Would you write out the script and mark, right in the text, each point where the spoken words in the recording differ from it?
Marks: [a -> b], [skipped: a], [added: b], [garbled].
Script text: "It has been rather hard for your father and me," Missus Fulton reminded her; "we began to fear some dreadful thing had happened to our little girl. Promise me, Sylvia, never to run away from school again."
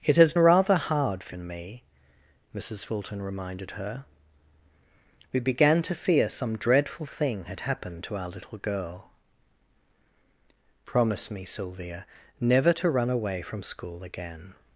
"It has [skipped: been] rather hard for [skipped: your father] and me," Missus Fulton reminded her; "we began to fear some dreadful thing had happened to our little girl. Promise me, Sylvia, never to run away from school again."